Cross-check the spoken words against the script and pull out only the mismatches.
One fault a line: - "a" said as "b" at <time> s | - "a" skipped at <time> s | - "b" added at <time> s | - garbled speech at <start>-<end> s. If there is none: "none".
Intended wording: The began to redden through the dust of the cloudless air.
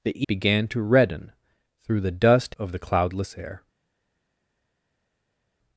none